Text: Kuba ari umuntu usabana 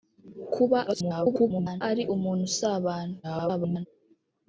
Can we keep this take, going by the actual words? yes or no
no